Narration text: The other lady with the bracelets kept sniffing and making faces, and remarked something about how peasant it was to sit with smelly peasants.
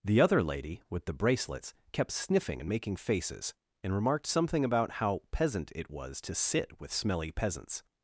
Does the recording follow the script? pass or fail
pass